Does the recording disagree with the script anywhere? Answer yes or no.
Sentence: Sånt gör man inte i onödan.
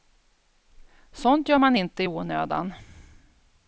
no